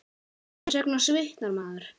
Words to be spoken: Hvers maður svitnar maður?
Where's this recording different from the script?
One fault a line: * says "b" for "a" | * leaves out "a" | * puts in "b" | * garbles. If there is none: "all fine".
* says "vegna" for "maður"